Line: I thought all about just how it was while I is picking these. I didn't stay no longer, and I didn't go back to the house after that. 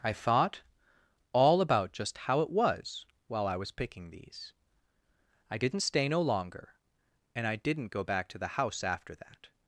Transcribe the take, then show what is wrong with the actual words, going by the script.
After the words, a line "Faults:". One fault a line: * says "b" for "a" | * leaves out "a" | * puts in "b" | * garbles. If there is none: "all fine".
I thought all about just how it was while I was picking these. I didn't stay no longer, and I didn't go back to the house after that.
Faults:
* says "was" for "is"